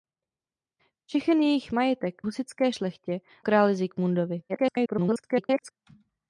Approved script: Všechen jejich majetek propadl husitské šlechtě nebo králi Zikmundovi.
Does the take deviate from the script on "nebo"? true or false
true